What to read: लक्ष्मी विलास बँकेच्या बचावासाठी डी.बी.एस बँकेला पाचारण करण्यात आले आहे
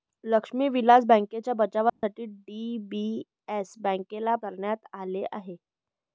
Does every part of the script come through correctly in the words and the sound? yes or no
no